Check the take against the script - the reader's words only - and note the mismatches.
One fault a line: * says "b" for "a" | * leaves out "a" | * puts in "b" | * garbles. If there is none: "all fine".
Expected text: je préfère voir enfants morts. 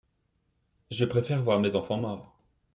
* puts in "mes"